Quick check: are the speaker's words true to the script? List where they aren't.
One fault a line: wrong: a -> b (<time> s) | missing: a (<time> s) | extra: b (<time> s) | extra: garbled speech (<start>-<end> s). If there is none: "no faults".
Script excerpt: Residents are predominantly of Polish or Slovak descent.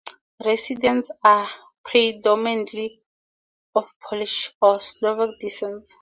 no faults